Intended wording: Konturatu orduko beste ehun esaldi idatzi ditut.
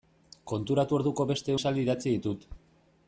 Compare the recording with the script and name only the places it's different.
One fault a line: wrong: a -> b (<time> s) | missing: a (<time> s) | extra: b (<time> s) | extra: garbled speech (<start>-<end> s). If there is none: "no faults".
missing: ehun (1.6 s)